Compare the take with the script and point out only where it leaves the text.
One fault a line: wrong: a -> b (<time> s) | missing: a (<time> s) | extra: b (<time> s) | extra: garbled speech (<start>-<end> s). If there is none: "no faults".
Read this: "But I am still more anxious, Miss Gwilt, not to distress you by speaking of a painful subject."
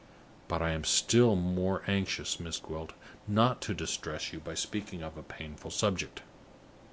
no faults